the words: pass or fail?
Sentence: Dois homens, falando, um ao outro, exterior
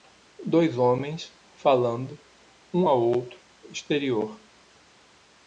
pass